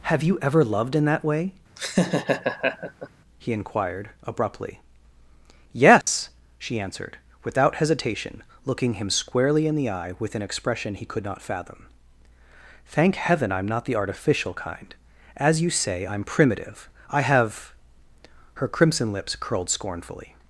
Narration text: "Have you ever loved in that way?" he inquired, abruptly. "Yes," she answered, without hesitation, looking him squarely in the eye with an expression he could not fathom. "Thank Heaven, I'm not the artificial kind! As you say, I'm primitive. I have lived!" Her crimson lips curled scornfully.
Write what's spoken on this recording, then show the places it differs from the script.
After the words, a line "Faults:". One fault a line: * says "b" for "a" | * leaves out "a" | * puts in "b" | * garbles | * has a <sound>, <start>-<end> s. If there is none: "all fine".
"Have you ever loved in that way?" he inquired, abruptly. "Yes," she answered, without hesitation, looking him squarely in the eye with an expression he could not fathom. "Thank Heaven, I'm not the artificial kind! As you say, I'm primitive. I have!" Her crimson lips curled scornfully.
Faults:
* has a laugh, 1.8-3.1 s
* has a dropout, 6.0-6.1 s
* leaves out "lived"